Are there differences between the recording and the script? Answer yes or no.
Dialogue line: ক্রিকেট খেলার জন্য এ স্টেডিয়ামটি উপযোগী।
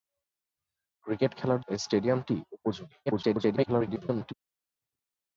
yes